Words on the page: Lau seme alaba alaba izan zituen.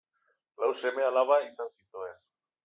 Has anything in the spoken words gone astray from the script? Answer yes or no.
yes